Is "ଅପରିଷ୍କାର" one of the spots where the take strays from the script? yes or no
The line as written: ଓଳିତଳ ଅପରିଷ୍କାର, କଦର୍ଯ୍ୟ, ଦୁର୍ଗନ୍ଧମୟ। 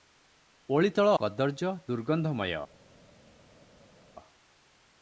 yes